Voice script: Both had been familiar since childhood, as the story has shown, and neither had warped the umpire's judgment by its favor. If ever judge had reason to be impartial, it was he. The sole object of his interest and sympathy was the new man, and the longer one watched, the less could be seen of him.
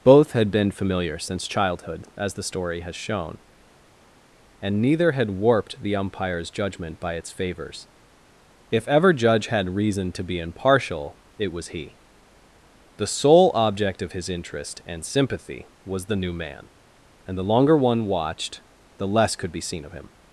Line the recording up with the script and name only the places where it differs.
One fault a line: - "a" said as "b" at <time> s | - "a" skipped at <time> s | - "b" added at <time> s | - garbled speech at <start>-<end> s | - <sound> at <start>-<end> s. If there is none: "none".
- "favor" said as "favors" at 7.3 s